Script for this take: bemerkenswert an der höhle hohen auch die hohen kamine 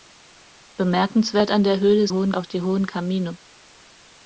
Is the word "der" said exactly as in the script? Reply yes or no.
yes